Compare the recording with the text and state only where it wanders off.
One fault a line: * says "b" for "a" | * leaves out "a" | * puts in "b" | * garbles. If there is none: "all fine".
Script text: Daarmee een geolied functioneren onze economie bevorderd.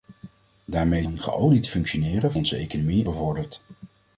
all fine